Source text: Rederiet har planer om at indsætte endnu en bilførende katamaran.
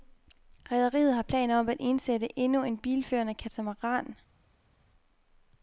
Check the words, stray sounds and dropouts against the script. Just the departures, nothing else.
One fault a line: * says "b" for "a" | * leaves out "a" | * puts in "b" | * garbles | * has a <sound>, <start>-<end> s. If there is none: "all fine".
all fine